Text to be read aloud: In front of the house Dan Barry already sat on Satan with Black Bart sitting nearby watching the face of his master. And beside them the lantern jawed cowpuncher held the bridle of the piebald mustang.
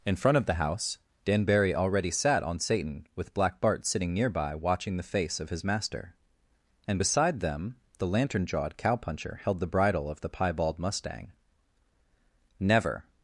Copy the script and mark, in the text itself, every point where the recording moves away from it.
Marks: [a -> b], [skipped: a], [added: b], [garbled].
In front of the house Dan Barry already sat on Satan with Black Bart sitting nearby watching the face of his master. And beside them the lantern jawed cowpuncher held the bridle of the piebald mustang. [added: Never]